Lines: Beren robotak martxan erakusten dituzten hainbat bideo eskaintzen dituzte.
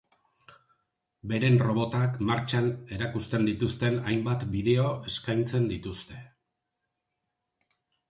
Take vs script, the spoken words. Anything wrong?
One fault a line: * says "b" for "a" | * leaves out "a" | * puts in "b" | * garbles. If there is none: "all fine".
all fine